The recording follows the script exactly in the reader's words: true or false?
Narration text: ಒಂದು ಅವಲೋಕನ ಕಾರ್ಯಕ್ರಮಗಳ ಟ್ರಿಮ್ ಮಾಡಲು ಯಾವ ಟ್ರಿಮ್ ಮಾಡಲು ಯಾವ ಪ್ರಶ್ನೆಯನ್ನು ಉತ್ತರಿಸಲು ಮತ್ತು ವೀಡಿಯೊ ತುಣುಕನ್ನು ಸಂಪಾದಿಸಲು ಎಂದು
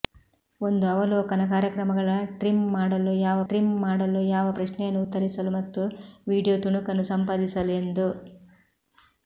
true